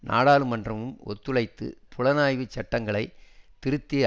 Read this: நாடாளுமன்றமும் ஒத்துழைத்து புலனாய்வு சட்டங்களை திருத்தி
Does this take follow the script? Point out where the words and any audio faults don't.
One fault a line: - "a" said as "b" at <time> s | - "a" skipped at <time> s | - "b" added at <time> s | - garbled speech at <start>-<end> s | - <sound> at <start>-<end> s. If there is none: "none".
none